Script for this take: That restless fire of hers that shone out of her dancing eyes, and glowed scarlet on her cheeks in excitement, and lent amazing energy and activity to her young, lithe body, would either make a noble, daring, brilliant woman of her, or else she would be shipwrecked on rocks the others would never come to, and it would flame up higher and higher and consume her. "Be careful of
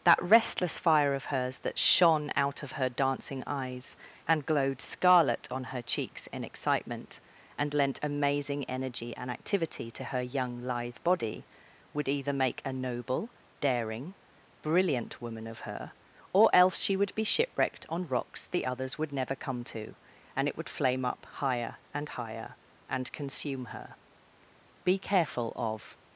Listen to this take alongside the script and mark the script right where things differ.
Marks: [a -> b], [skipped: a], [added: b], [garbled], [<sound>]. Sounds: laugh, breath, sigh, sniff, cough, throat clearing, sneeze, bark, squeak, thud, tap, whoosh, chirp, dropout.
That restless fire of hers that shone out of her dancing eyes, and glowed scarlet on her cheeks in excitement, and lent amazing energy and activity to her young, lithe body, would either make a noble, daring, brilliant woman of her, or else she would be shipwrecked on rocks the others would never come to, and it would flame up higher and higher and consume her. "Be careful of